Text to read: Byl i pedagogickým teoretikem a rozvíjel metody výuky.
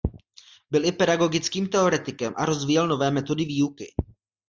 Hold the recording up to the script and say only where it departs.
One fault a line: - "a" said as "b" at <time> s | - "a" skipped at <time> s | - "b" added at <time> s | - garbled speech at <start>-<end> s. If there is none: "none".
- "nové" added at 2.9 s